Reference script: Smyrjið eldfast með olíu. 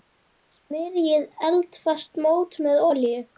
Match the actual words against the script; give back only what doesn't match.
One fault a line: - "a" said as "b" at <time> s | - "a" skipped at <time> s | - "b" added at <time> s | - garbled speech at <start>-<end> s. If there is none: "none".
- "mót" added at 2.3 s